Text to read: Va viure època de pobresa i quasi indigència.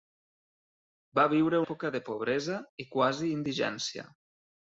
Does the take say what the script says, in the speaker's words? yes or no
yes